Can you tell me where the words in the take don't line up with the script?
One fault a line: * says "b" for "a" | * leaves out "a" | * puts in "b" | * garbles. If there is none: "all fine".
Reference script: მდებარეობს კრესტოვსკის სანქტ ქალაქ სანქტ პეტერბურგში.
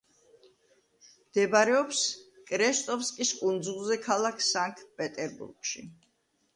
* says "კუნძულზე" for "სანქტ"